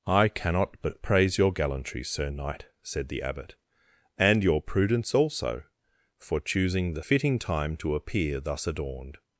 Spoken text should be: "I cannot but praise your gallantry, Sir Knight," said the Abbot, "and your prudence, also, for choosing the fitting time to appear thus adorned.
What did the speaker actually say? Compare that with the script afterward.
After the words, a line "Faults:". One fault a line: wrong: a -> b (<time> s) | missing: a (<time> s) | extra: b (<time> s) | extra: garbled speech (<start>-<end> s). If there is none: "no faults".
"I cannot but praise your gallantry, Sir Knight," said the Abbot, "and your prudence, also, for choosing the fitting time to appear thus adorned.
Faults:
no faults